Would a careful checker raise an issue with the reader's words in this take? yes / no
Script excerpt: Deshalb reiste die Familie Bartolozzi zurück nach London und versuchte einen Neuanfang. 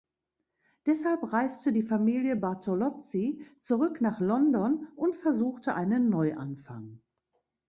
no